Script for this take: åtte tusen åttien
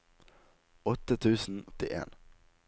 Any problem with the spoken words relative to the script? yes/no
no